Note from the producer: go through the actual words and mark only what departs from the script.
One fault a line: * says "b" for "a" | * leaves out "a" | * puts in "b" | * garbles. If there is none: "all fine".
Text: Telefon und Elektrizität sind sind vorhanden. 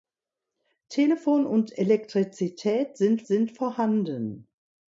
all fine